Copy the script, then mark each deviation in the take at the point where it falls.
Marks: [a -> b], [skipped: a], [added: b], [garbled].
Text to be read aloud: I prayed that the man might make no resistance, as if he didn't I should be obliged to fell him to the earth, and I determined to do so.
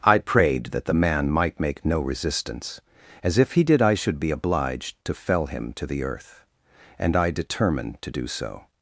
I prayed that the man might make no resistance, as if he [didn't -> did] I should be obliged to fell him to the earth, and I determined to do so.